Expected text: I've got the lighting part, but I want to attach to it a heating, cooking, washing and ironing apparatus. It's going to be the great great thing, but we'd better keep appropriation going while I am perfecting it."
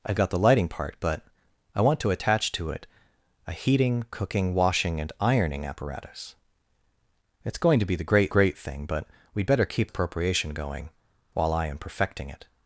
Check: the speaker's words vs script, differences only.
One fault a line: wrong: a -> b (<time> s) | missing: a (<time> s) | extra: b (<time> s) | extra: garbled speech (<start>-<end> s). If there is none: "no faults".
no faults